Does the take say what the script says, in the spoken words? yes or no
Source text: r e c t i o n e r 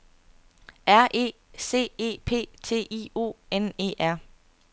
no